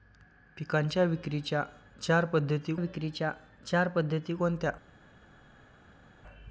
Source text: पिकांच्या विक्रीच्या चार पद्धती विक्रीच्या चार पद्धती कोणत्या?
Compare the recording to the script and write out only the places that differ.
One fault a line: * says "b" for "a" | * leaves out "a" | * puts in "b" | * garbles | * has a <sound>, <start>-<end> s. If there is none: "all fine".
all fine